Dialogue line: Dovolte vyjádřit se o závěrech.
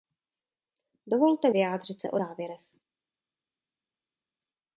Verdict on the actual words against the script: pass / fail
pass